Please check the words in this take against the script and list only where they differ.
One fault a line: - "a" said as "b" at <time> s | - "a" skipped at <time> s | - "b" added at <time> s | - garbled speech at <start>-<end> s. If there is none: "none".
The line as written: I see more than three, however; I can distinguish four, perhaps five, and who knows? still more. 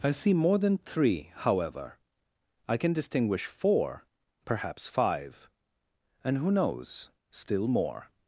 none